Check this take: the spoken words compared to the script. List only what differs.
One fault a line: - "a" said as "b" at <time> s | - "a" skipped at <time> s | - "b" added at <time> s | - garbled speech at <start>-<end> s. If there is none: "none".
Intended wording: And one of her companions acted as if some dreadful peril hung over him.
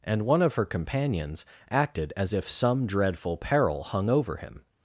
none